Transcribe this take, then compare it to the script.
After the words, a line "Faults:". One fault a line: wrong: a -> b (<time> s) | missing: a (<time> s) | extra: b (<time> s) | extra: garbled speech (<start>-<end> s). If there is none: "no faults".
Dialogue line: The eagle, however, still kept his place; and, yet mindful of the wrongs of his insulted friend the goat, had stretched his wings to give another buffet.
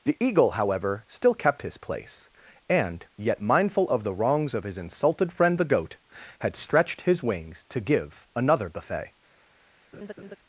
The eagle, however, still kept his place; and, yet mindful of the wrongs of his insulted friend the goat, had stretched his wings to give another buffet.
Faults:
no faults